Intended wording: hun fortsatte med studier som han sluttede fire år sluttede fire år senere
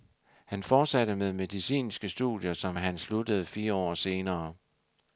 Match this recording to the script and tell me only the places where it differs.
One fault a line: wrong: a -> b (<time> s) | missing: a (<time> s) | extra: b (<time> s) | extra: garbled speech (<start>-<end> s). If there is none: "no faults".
wrong: hun -> han (0.5 s)
extra: medicinske (1.3 s)
missing: sluttede fire år (3.9 s)